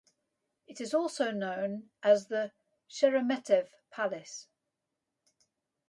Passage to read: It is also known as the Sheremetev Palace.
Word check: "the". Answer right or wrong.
right